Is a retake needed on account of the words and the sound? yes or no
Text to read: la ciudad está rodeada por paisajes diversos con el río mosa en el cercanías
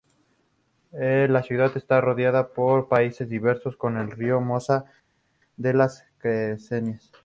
yes